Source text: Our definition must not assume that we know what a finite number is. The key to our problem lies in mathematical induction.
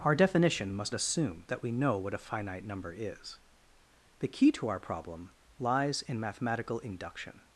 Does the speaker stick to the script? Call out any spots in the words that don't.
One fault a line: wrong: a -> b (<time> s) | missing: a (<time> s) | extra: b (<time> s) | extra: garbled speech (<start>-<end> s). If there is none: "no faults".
missing: not (0.9 s)